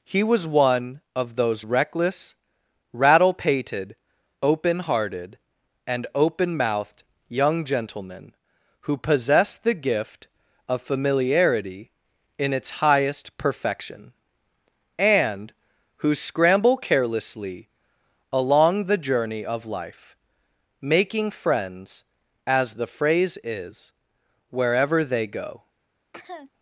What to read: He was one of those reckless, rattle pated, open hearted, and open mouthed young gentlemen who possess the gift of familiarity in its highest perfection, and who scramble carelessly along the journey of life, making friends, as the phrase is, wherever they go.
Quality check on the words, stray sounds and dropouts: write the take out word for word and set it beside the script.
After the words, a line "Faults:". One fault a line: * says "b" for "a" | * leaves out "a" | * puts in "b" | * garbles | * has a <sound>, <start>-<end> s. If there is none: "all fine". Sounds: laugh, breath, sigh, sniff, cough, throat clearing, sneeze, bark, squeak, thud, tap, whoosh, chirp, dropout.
He was one of those reckless, rattle pated, open hearted, and open mouthed young gentlemen who possess the gift of familiarity in its highest perfection, and who scramble carelessly along the journey of life, making friends, as the phrase is, wherever they go.
Faults:
* has a cough, 26.1-26.5 s